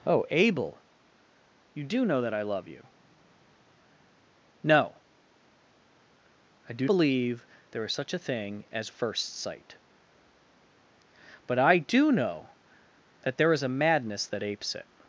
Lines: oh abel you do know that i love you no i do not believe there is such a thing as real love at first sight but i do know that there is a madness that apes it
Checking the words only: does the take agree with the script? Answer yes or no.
no